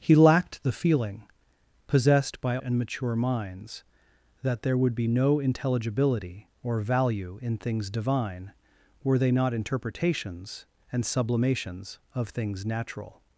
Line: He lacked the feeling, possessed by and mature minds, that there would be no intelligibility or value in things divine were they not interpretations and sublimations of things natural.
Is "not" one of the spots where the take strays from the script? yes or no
no